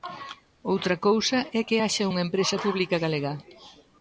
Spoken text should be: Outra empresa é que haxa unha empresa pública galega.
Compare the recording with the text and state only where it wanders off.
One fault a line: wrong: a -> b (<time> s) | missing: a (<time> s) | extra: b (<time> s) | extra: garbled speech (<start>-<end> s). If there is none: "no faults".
wrong: empresa -> cousa (1.1 s)